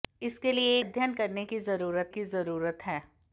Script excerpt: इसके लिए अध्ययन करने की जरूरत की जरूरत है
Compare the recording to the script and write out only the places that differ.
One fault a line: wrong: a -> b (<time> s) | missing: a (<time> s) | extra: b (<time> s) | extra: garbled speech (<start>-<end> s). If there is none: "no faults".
no faults